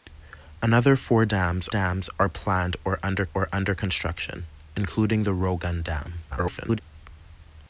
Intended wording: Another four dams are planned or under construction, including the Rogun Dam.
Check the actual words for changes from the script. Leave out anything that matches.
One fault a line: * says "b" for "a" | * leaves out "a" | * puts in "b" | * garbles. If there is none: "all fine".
* puts in "dams"
* puts in "or under"
* garbles